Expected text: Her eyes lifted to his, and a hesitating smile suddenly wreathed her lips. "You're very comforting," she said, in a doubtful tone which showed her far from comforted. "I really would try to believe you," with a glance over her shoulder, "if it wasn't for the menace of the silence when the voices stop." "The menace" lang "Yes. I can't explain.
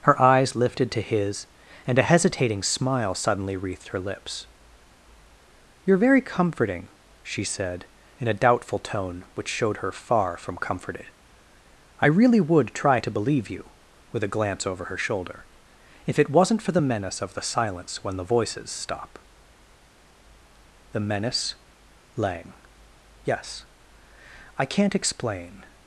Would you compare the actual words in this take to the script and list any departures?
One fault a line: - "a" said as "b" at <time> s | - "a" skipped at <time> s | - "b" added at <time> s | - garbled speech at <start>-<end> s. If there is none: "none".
none